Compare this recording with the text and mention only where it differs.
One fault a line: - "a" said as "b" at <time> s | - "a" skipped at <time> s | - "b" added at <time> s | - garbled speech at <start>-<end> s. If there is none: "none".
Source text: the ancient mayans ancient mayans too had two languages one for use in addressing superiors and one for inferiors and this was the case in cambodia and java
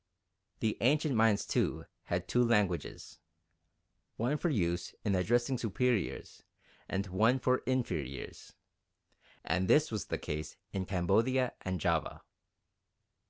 - "ancient mayans" skipped at 1.5 s